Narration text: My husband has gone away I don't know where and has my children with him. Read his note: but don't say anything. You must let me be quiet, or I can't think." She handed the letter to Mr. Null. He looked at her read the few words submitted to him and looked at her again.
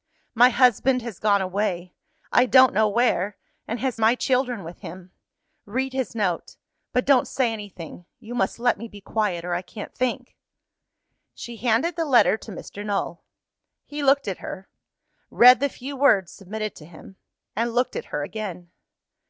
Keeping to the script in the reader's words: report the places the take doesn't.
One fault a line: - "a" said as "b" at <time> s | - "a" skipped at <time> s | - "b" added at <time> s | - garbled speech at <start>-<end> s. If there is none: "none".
none